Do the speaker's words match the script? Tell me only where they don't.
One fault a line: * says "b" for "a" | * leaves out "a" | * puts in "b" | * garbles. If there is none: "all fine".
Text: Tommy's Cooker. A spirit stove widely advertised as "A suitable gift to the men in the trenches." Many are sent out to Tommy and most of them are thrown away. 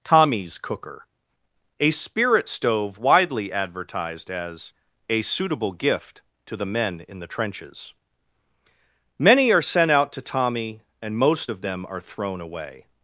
all fine